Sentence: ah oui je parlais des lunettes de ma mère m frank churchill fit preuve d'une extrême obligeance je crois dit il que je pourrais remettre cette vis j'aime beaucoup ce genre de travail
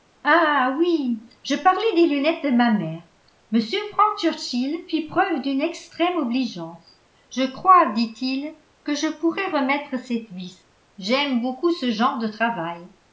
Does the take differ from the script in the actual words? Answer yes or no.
no